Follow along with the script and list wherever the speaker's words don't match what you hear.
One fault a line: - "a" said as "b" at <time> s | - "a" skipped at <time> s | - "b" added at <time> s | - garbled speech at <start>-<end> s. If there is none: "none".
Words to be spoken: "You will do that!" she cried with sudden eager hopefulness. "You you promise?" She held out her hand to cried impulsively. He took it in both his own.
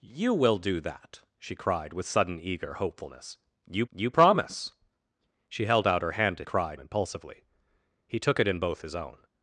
none